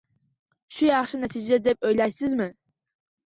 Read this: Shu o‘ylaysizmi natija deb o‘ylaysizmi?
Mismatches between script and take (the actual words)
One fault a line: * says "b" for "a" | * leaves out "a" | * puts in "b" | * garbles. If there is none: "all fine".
* says "yaxshi" for "o‘ylaysizmi"